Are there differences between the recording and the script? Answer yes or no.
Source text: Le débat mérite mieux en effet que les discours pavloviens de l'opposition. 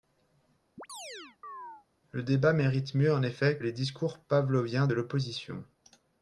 yes